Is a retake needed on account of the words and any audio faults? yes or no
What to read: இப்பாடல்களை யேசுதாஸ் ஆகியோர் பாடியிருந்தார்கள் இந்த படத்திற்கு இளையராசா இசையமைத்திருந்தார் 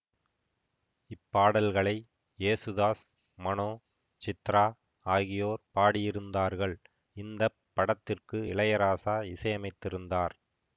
yes